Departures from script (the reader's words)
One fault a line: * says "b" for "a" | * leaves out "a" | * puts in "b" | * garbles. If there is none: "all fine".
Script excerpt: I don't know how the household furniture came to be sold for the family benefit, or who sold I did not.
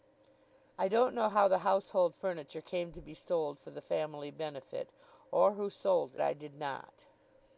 all fine